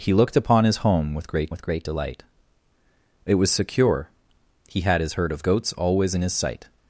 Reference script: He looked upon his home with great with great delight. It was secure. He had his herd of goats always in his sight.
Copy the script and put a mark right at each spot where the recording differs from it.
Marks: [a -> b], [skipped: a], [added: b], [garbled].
He looked upon his home with great with great delight. It was secure. He had his herd of goats always in his sight.